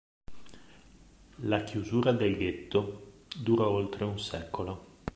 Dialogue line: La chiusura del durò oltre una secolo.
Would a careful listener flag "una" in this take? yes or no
yes